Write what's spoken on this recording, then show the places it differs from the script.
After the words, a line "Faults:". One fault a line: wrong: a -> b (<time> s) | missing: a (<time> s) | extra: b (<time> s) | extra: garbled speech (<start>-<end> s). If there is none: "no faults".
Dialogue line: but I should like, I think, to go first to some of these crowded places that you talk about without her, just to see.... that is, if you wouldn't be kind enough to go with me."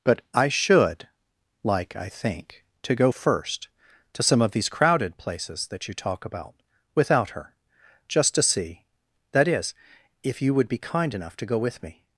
but I should like, I think, to go first to some of these crowded places that you talk about without her, just to see.... that is, if you would be kind enough to go with me."
Faults:
wrong: wouldn't -> would (10.5 s)